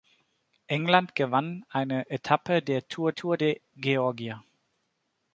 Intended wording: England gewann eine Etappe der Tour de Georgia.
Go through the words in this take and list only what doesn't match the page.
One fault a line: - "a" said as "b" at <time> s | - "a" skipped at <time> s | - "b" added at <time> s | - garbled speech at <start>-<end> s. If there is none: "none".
- "Tour" added at 3.1 s